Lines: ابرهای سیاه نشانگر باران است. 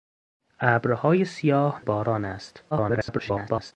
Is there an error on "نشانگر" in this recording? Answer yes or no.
yes